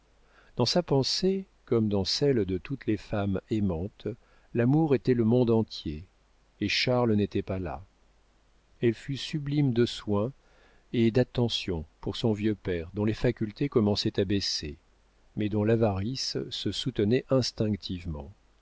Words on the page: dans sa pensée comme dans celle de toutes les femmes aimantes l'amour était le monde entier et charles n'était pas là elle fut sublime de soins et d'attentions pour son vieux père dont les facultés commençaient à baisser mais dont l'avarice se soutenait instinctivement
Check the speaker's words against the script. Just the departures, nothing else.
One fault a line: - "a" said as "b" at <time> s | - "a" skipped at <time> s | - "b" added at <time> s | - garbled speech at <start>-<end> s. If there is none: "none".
none